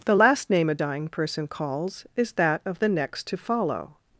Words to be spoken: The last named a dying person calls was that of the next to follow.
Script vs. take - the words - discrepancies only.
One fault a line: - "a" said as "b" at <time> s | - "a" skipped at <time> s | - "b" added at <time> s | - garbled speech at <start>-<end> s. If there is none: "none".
- "named" said as "name" at 0.5 s
- "was" said as "is" at 2.2 s